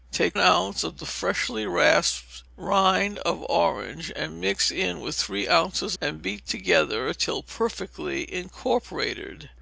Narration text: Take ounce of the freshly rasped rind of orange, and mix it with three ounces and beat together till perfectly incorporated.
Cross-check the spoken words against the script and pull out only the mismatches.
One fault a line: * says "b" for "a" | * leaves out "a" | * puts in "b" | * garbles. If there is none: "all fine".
all fine